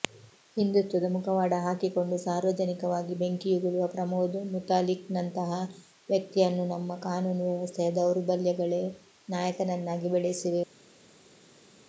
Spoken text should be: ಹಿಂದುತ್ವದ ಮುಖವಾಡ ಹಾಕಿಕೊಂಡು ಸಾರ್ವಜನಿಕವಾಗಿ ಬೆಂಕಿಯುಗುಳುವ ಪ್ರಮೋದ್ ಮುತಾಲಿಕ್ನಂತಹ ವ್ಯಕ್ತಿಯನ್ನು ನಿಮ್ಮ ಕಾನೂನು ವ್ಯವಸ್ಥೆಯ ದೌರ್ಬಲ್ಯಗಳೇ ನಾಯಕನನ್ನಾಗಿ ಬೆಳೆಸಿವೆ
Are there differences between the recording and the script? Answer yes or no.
yes